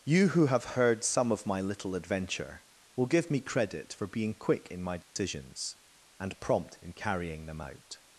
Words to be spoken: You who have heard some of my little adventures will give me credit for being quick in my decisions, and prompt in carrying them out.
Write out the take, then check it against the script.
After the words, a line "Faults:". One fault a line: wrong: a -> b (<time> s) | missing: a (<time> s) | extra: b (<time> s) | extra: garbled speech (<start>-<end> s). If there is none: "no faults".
You who have heard some of my little adventure will give me credit for being quick in my decisions, and prompt in carrying them out.
Faults:
wrong: adventures -> adventure (1.9 s)